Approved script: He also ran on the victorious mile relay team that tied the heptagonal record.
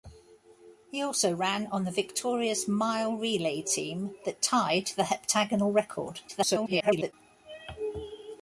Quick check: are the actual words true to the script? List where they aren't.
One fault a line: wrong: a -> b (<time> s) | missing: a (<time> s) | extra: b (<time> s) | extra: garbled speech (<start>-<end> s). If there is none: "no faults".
extra: garbled speech (6.3-7.1 s)